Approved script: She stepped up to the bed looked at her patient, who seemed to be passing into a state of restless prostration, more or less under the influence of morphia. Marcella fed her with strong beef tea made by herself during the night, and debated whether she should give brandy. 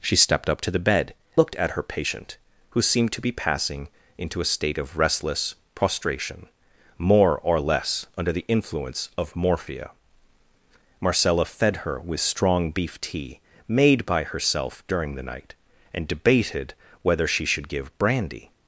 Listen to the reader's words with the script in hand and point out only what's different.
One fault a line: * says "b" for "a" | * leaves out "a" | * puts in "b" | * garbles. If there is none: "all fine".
all fine